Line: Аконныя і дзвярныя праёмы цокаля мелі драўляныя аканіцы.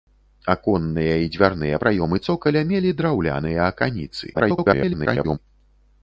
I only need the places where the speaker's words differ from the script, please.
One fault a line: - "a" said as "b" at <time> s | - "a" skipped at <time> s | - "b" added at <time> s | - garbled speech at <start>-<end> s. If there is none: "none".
- garbled speech at 4.3-5.4 s